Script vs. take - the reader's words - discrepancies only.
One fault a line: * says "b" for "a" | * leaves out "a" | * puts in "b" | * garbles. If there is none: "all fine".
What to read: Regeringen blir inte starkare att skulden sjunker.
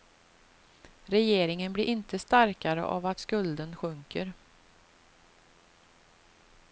* puts in "av"